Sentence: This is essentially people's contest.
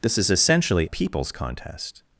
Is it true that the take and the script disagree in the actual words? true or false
false